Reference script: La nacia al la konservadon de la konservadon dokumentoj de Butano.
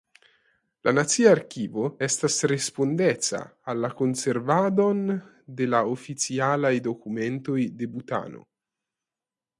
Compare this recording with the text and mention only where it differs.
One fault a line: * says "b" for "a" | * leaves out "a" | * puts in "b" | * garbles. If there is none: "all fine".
* puts in "arkivo estas respondeca"
* says "oficialaj" for "konservadon"